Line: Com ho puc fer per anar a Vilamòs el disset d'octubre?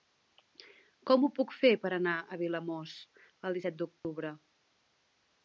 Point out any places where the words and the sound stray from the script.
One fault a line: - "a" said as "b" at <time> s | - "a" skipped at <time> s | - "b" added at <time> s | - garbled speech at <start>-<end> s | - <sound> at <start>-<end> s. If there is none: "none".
- dropout at 4.0-4.0 s